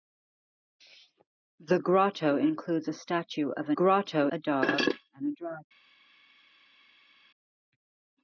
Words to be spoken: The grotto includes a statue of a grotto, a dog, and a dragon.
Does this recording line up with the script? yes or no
yes